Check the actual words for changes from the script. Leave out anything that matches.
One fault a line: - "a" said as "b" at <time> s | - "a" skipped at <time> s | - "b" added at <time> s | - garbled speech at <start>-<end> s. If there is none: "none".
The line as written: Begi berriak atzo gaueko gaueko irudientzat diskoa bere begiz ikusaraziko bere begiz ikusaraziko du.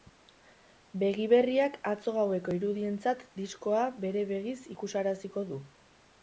- "gaueko" skipped at 2.5 s
- "bere begiz ikusaraziko" skipped at 5.5 s